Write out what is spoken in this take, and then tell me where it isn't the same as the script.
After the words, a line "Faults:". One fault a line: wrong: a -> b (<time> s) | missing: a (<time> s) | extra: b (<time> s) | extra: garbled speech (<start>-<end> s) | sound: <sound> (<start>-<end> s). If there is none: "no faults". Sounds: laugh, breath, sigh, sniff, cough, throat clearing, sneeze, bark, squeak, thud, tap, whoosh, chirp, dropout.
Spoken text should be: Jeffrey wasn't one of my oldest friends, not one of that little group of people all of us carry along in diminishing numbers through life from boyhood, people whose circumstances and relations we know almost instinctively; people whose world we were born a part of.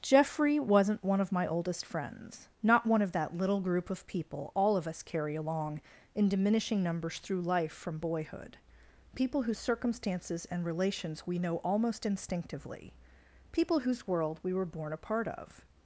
Jeffrey wasn't one of my oldest friends, not one of that little group of people all of us carry along in diminishing numbers through life from boyhood, people whose circumstances and relations we know almost instinctively; people whose world we were born a part of.
Faults:
no faults